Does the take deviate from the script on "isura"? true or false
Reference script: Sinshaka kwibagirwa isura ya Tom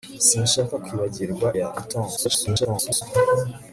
true